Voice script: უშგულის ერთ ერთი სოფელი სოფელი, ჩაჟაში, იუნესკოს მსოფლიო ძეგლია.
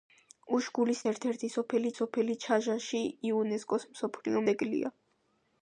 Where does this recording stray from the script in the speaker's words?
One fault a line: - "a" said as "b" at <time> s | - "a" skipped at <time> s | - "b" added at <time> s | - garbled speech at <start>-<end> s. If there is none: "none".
none